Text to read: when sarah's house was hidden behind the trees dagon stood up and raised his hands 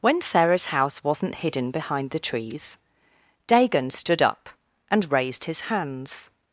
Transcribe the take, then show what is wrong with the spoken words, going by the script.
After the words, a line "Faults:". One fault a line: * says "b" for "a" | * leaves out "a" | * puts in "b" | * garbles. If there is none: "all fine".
when sarah's house wasn't hidden behind the trees dagon stood up and raised his hands
Faults:
* says "wasn't" for "was"